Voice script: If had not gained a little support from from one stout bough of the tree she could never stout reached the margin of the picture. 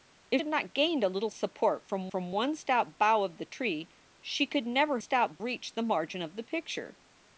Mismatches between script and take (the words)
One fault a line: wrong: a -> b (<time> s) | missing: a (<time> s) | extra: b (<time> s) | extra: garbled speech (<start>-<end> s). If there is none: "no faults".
no faults